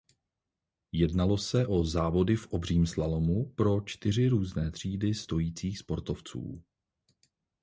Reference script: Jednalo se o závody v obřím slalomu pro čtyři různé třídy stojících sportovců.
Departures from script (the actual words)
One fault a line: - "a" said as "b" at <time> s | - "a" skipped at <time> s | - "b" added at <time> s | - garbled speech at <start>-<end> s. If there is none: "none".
none